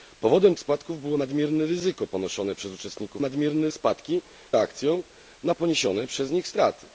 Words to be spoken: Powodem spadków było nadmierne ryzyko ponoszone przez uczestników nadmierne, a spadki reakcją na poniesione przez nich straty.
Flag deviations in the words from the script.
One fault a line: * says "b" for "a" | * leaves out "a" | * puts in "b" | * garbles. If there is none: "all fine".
all fine